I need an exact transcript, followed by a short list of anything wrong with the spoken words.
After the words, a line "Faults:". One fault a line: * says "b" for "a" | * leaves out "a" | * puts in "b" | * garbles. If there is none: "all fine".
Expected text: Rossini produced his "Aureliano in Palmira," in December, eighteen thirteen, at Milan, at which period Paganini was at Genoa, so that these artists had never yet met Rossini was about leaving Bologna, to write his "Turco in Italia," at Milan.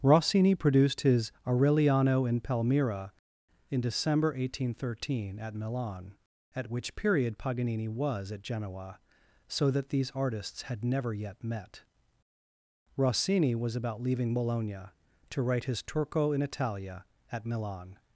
Rossini produced his "Aureliano in Palmira," in December, eighteen thirteen, at Milan, at which period Paganini was at Genoa, so that these artists had never yet met Rossini was about leaving Bologna, to write his "Turco in Italia," at Milan.
Faults:
all fine